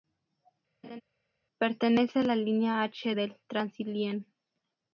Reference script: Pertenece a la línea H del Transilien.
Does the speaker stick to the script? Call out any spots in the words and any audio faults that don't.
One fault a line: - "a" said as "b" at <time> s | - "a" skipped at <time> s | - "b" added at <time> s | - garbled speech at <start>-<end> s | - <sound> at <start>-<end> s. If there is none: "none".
- laugh at 0.8-1.0 s